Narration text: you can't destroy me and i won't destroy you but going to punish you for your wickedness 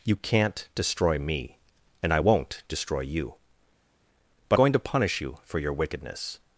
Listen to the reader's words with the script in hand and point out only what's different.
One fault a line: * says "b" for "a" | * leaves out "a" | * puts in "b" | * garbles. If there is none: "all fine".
all fine